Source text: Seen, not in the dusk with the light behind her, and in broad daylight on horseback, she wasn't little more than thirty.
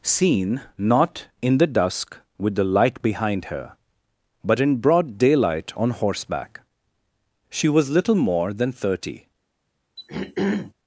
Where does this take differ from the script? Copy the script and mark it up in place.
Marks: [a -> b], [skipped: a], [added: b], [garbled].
Seen, not in the dusk with the light behind her, [and -> but] in broad daylight on horseback, she [wasn't -> was] little more than thirty.